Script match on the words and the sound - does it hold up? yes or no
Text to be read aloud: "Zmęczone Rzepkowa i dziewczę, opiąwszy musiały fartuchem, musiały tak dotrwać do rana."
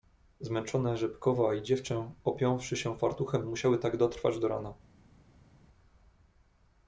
no